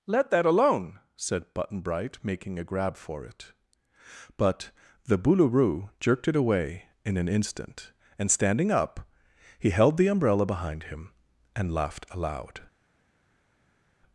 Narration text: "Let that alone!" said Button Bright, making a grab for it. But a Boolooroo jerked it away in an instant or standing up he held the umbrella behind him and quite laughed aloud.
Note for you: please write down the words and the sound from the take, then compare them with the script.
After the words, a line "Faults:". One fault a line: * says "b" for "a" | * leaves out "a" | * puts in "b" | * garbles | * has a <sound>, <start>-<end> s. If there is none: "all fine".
"Let that alone!" said Button Bright, making a grab for it. But the Boolooroo jerked it away in an instant and standing up he held the umbrella behind him and laughed aloud.
Faults:
* says "the" for "a"
* says "and" for "or"
* leaves out "quite"